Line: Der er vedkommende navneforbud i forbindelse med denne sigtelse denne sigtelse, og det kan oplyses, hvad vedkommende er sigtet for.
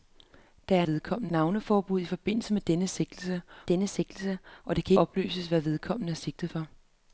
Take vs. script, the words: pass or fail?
pass